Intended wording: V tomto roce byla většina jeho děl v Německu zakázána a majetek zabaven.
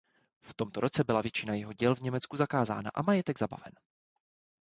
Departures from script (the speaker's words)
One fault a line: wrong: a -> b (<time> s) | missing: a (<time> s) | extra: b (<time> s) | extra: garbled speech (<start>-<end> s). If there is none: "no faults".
no faults